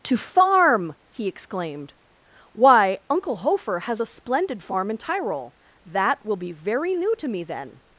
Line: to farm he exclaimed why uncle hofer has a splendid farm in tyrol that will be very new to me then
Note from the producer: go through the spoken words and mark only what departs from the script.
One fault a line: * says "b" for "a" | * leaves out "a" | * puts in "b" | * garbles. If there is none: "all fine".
all fine